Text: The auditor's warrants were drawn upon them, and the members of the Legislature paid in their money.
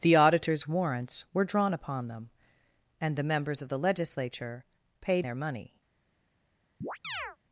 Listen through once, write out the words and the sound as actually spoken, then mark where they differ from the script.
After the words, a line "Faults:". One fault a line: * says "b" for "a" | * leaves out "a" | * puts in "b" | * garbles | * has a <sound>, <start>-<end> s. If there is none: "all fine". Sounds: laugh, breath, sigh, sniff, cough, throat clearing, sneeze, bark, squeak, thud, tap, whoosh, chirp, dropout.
The auditor's warrants were drawn upon them, and the members of the Legislature paid their money.
Faults:
* leaves out "in"
* has a chirp, 6.8-7.4 s